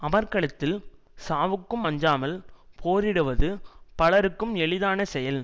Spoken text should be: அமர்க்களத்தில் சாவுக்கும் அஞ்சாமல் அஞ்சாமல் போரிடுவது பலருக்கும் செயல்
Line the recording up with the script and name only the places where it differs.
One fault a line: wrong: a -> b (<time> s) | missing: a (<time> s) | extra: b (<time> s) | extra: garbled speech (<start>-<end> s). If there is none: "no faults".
missing: அஞ்சாமல் (2.3 s)
extra: எளிதான (4.6 s)